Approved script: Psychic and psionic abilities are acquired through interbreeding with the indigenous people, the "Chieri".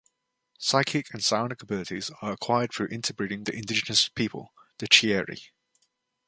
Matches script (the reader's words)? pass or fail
fail